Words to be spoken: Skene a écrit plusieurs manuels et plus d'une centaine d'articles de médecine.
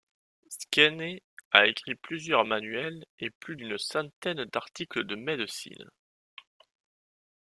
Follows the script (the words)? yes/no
yes